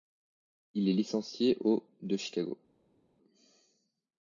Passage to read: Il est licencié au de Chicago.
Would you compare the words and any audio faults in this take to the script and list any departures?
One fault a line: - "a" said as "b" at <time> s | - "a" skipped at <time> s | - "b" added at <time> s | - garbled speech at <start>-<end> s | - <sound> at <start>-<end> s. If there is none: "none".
none